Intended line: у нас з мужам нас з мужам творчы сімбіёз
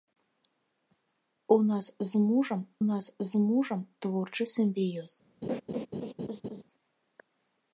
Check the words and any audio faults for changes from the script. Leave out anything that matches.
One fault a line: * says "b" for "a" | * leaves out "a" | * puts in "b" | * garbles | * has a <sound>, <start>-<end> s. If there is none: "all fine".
* has a laugh, 5.4-6.6 s